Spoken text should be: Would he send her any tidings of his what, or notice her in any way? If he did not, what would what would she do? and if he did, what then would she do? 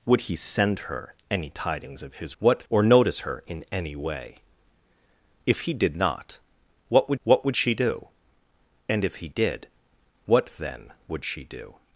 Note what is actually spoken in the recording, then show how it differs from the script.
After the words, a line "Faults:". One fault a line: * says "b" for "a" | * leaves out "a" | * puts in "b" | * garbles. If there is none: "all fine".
Would he send her any tidings of his what, or notice her in any way? If he did not, what would what would she do? and if he did, what then would she do?
Faults:
all fine